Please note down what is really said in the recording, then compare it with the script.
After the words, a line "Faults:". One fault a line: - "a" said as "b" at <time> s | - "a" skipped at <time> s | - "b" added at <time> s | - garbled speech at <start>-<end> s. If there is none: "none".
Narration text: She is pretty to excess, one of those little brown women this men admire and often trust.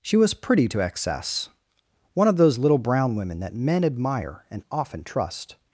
She was pretty to excess, one of those little brown women that men admire and often trust.
Faults:
- "is" said as "was" at 0.2 s
- "this" said as "that" at 3.4 s